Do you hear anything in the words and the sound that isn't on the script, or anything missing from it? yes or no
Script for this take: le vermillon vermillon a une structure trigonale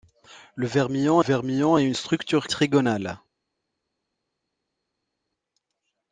no